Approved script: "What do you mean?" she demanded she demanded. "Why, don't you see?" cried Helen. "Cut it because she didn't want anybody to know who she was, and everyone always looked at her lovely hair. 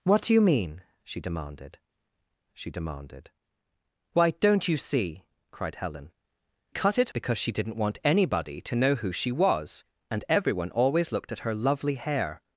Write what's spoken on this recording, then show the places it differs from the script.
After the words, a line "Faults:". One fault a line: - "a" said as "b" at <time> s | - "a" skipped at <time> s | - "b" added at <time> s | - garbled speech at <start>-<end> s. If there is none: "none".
"What do you mean?" she demanded she demanded. "Why, don't you see?" cried Helen. "Cut it because she didn't want anybody to know who she was, and everyone always looked at her lovely hair.
Faults:
none